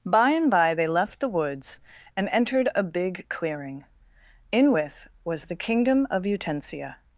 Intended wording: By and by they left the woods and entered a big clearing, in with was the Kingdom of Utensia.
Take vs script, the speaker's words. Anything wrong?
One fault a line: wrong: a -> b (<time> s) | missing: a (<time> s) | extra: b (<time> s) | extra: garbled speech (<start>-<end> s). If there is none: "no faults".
no faults